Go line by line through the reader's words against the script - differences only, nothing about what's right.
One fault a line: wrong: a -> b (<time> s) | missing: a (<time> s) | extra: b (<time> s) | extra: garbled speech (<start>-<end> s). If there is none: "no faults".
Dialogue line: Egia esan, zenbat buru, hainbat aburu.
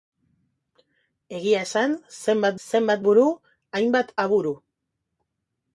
extra: zenbat (2.7 s)